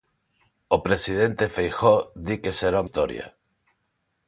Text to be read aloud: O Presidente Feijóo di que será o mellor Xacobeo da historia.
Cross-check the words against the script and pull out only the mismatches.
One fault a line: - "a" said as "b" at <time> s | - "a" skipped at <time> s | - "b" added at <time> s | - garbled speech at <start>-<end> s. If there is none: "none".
- "mellor Xacobeo da" skipped at 2.9 s